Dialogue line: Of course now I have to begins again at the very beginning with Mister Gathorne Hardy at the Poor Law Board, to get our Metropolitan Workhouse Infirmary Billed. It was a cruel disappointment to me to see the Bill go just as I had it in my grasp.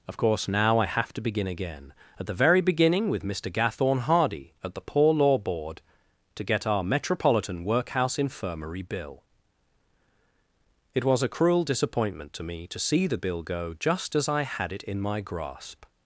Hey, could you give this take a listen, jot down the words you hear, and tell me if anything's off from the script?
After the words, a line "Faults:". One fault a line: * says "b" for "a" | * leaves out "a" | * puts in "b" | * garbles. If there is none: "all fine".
Of course now I have to begin again at the very beginning with Mister Gathorne Hardy at the Poor Law Board, to get our Metropolitan Workhouse Infirmary Bill. It was a cruel disappointment to me to see the Bill go just as I had it in my grasp.
Faults:
* says "begin" for "begins"
* says "Bill" for "Billed"